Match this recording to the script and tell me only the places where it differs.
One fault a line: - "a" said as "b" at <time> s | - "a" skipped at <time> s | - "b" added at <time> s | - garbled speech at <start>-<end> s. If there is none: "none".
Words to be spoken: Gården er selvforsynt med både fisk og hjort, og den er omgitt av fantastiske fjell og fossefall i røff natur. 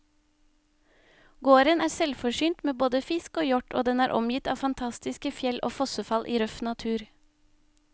none